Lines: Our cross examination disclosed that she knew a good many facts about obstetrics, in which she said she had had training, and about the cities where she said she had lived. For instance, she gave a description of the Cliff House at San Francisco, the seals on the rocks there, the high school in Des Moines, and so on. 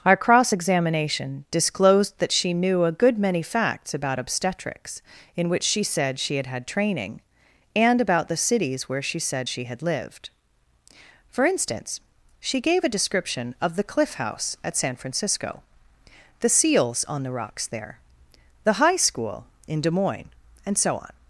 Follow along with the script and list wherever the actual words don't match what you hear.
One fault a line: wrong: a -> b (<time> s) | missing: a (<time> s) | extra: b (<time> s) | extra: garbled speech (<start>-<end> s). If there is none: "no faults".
no faults